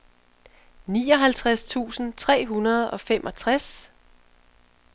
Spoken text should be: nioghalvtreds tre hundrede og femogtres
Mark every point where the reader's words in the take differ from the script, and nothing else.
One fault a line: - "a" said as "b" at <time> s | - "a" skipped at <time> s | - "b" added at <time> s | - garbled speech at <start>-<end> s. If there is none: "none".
- "tusind" added at 1.6 s